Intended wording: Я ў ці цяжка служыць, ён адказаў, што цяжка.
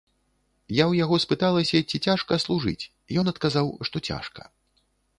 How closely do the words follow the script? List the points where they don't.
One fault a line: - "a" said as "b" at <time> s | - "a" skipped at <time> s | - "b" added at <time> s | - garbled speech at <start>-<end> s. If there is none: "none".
- "яго спыталася" added at 1.0 s